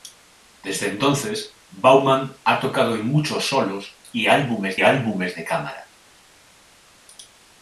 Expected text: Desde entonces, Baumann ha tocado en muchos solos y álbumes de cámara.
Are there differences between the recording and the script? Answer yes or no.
yes